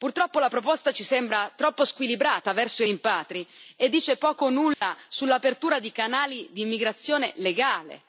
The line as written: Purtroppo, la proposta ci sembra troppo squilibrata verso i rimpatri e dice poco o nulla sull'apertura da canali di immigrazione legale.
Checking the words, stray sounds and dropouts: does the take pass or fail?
fail